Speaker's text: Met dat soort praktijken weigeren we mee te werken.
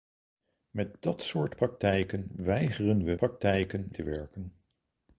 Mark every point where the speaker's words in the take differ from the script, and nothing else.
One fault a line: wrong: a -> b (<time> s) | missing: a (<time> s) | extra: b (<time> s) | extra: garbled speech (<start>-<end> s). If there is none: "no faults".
wrong: mee -> praktijken (3.2 s)